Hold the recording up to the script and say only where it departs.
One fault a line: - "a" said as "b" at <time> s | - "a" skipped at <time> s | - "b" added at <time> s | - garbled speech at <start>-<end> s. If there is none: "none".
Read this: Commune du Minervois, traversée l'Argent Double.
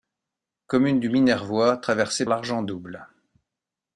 none